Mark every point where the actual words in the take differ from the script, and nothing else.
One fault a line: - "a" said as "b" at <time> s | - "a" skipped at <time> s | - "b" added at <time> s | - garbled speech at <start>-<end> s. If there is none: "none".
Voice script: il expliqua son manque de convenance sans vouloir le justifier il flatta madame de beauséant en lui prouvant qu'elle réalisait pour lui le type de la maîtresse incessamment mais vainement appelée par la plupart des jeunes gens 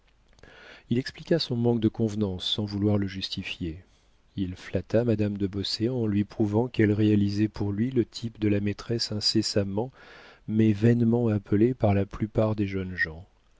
none